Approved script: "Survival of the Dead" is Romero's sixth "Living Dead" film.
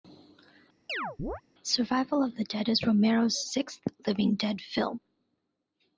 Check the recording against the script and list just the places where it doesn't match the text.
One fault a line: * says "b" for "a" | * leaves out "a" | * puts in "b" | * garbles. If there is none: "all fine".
all fine